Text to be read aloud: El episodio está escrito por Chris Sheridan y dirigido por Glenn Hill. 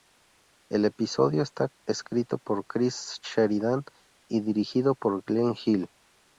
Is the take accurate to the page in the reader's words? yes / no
yes